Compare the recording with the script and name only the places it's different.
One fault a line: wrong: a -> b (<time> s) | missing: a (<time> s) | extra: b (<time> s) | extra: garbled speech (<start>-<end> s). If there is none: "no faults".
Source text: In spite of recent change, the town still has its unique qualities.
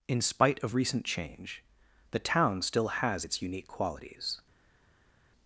no faults